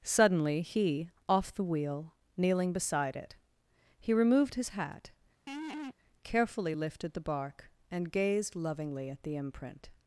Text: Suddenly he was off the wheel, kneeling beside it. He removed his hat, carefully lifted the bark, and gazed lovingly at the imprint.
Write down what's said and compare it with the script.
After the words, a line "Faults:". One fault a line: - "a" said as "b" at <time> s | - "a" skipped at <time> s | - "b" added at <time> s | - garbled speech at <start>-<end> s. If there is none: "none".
Suddenly he off the wheel, kneeling beside it. He removed his hat, carefully lifted the bark, and gazed lovingly at the imprint.
Faults:
- "was" skipped at 1.1 s